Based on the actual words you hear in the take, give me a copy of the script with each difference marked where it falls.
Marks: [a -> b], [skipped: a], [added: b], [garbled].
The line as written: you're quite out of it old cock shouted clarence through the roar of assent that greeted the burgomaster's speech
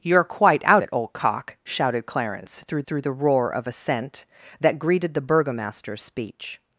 you're quite out [skipped: of] it old cock shouted clarence through [added: through] the roar of assent that greeted the burgomaster's speech